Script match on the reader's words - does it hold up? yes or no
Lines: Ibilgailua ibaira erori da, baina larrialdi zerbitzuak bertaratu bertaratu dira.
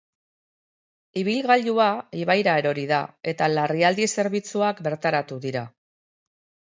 no